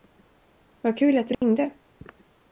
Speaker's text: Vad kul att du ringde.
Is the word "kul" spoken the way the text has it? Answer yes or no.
yes